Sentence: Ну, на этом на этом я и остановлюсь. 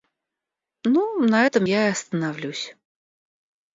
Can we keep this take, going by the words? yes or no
no